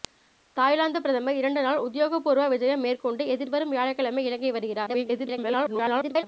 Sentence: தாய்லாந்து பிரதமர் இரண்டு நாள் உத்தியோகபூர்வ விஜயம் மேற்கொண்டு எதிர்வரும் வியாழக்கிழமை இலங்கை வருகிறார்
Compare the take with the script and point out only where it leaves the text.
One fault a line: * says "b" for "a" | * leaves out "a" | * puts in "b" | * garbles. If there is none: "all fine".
* garbles